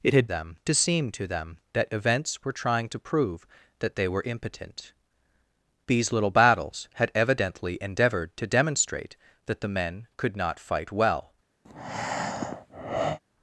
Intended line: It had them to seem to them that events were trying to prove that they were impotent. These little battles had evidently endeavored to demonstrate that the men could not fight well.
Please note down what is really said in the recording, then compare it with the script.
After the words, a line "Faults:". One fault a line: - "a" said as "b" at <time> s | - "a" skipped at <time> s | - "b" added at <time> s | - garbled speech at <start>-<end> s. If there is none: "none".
It had them to seem to them that events were trying to prove that they were impotent. These little battles had evidently endeavored to demonstrate that the men could not fight well.
Faults:
none